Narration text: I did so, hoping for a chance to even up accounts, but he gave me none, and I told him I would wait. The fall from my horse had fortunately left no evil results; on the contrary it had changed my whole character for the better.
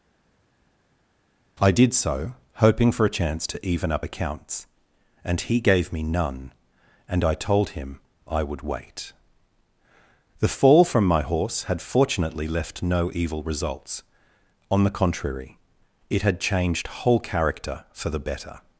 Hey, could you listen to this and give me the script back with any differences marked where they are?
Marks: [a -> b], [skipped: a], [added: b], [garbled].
I did so, hoping for a chance to even up accounts, [but -> and] he gave me none, and I told him I would wait. The fall from my horse had fortunately left no evil results; on the contrary it had changed [skipped: my] whole character for the better.